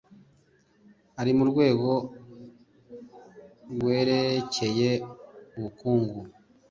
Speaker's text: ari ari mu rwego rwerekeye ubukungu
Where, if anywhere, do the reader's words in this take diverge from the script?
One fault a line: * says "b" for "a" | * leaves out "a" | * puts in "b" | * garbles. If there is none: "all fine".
* leaves out "ari"